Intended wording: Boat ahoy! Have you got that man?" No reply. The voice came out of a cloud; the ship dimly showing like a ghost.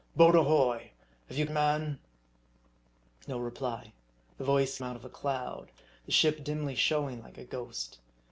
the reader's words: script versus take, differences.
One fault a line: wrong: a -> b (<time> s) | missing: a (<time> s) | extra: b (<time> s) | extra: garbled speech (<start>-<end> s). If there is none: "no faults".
missing: got that (1.4 s)
missing: came (4.8 s)